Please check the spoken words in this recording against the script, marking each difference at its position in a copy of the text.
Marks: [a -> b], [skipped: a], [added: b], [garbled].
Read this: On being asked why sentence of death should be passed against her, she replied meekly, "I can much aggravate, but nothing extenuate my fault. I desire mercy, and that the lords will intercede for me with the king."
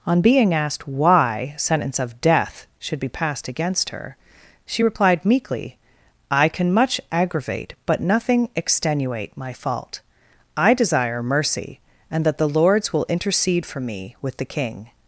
On being asked why sentence of death should be passed against her, she replied meekly, "I can much aggravate, but nothing extenuate my fault. I desire mercy, and that the lords will intercede for me with the king."